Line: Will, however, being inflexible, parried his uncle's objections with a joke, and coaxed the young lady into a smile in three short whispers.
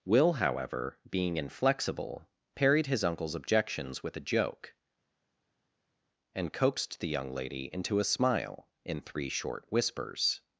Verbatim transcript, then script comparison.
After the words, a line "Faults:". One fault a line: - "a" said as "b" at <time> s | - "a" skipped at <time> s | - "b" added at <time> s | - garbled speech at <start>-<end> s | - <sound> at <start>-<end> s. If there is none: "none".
Will, however, being inflexible, parried his uncle's objections with a joke, and coaxed the young lady into a smile in three short whispers.
Faults:
none